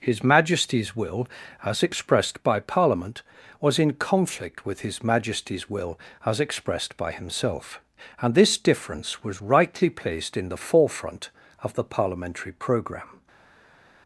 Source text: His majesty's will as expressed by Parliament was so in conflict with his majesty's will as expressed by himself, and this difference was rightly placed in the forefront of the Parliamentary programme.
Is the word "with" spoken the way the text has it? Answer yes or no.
yes